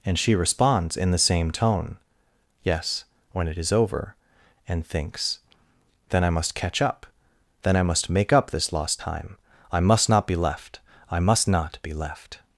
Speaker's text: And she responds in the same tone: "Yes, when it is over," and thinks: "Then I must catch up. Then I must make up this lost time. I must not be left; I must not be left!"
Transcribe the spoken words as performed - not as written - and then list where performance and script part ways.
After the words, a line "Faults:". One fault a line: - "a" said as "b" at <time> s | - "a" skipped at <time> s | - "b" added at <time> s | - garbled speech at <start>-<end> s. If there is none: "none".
And she responds in the same tone: "Yes, when it is over," and thinks: "Then I must catch up. Then I must make up this lost time. I must not be left; I must not be left!"
Faults:
none